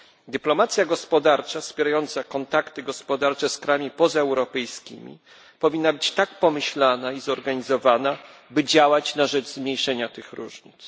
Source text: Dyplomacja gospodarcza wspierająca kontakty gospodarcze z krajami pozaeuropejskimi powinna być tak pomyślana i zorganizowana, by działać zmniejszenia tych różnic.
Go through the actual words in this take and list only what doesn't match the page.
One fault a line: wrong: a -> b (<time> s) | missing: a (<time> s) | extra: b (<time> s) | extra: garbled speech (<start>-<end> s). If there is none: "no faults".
extra: na rzecz (9.2 s)